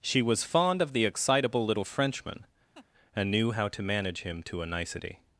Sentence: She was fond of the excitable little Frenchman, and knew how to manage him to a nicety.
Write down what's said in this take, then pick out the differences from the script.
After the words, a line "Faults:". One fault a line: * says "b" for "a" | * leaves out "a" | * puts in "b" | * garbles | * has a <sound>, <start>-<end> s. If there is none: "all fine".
She was fond of the excitable little Frenchman, and knew how to manage him to a nicety.
Faults:
* has a laugh, 2.7-2.9 s